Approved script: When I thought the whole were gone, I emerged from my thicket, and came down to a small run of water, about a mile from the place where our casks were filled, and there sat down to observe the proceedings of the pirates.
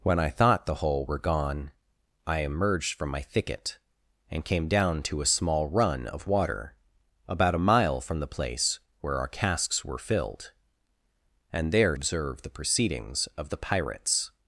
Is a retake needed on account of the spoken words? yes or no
yes